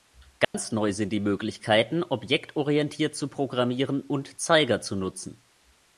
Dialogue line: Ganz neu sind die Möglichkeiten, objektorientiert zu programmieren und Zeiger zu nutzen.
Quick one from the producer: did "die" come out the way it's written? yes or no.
yes